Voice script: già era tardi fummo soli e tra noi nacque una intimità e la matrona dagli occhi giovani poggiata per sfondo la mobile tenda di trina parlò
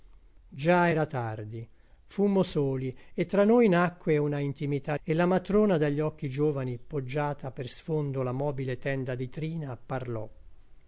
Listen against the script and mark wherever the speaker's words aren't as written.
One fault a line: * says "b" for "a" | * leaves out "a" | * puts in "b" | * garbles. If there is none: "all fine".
all fine